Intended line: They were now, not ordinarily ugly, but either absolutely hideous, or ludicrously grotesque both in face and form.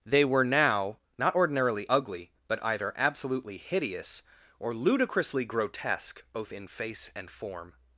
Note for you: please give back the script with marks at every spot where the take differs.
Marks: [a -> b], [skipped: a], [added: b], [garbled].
They were now, not ordinarily ugly, but either absolutely hideous, or ludicrously grotesque both in face and form.